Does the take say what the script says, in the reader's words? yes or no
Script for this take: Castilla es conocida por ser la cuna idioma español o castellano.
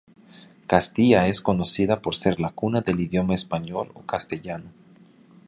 no